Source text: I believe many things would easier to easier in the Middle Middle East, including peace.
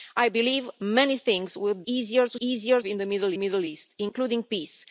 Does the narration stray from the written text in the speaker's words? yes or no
no